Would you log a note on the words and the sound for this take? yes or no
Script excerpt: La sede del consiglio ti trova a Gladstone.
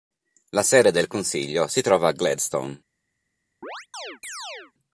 yes